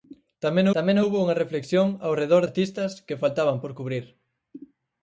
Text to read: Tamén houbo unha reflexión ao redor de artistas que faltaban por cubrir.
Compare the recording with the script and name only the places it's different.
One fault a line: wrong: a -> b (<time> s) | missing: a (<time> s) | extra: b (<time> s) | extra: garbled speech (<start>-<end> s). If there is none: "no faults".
extra: tamén (0.7 s)
missing: de (2.4 s)